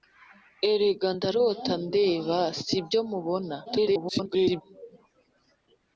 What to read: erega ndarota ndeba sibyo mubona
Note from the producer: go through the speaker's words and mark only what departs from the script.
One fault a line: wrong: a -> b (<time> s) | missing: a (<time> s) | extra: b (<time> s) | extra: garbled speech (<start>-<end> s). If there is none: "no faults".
extra: garbled speech (3.7-4.6 s)